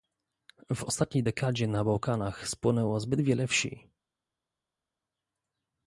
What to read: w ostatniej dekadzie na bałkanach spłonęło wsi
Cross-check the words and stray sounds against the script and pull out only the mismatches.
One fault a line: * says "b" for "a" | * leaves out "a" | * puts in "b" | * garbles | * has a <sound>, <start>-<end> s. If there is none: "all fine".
* puts in "zbyt wiele"